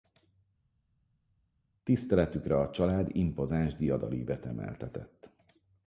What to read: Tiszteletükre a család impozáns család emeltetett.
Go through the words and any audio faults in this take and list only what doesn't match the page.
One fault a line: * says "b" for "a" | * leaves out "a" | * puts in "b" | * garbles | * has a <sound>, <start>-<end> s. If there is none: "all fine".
* says "diadalívet" for "család"